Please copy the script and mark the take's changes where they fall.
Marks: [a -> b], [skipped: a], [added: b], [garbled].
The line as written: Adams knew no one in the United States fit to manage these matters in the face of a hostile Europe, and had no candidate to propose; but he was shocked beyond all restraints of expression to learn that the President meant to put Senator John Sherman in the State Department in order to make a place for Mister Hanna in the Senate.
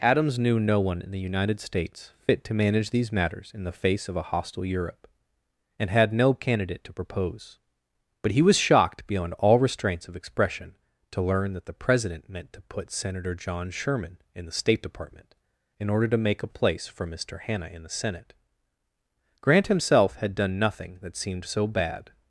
Adams knew no one in the United States fit to manage these matters in the face of a hostile Europe, and had no candidate to propose; but he was shocked beyond all restraints of expression to learn that the President meant to put Senator John Sherman in the State Department in order to make a place for Mister Hanna in the Senate. [added: Grant himself had done nothing that seemed so bad]